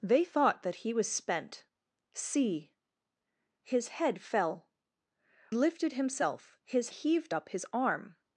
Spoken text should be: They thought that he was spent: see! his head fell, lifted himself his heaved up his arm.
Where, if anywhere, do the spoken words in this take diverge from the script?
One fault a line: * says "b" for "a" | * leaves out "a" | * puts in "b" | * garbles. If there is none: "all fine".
all fine